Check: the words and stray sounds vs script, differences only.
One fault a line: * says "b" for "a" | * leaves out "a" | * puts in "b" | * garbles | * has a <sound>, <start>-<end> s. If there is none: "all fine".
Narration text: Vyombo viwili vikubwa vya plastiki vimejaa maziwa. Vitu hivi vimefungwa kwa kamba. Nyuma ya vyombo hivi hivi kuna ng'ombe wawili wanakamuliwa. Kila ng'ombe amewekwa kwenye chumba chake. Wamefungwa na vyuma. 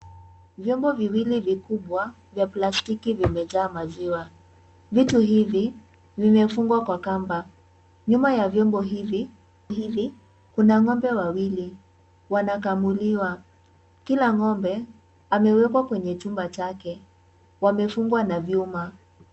all fine